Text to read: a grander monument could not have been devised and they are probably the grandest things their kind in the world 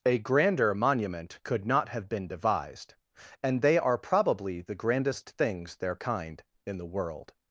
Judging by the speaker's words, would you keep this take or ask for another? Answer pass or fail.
pass